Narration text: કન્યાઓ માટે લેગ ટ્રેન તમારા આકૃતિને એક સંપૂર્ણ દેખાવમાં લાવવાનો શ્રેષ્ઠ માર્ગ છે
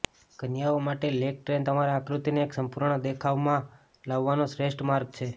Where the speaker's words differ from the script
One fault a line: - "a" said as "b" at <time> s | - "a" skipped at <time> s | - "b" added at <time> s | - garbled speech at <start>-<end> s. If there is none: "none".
none